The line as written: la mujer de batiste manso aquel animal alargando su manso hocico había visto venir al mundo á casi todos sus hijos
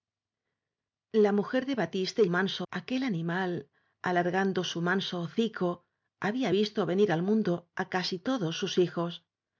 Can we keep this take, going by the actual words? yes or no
yes